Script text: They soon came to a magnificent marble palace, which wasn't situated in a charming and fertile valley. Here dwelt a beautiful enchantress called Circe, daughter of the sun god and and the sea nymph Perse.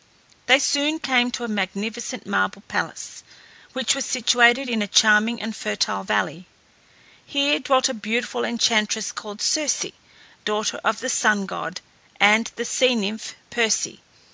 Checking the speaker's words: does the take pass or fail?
fail